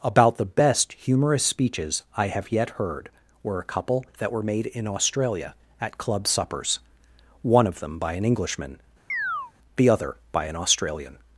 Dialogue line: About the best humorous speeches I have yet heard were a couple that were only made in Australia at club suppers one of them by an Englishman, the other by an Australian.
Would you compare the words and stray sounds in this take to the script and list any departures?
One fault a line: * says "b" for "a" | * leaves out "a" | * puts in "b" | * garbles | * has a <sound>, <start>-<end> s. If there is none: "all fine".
* leaves out "only"
* has a chirp, 9.1-9.5 s